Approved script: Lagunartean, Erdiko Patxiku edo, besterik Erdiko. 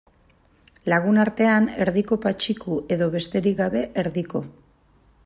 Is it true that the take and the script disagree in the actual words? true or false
true